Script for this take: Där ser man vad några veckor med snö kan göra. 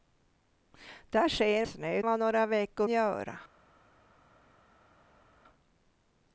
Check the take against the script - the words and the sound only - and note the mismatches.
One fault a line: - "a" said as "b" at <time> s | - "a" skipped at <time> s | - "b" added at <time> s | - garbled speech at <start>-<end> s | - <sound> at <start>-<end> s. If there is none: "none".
- "man" said as "snö" at 1.7 s
- "med snö kan" skipped at 2.9 s